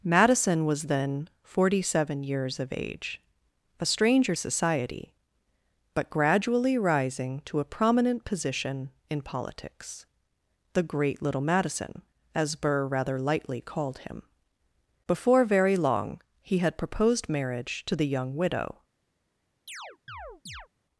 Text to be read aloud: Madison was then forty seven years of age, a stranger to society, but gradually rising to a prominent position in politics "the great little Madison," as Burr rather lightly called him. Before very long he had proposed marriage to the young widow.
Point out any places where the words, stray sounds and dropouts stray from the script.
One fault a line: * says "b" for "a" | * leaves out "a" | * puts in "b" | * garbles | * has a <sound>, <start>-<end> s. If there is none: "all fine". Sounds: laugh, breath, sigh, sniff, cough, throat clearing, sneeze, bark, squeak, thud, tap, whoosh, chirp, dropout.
* leaves out "to"
* has a chirp, 19.7-20.7 s